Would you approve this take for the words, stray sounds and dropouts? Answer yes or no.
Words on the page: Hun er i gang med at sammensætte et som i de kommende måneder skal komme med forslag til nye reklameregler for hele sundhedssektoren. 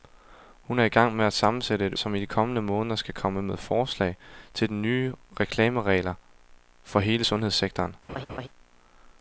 no